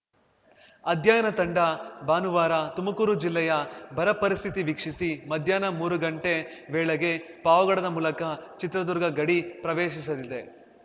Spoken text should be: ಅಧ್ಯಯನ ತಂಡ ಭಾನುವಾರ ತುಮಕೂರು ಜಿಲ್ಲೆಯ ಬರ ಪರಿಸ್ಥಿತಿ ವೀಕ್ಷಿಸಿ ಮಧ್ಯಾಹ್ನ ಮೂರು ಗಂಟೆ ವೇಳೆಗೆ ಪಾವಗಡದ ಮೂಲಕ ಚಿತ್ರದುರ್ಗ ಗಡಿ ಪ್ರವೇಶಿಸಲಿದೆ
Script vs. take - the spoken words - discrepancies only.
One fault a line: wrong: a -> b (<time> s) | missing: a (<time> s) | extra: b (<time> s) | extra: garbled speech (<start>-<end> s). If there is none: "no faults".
no faults